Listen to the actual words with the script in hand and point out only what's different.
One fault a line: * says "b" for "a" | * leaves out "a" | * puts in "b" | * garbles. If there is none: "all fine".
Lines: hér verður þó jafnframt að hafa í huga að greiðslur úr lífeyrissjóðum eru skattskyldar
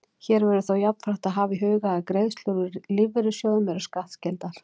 all fine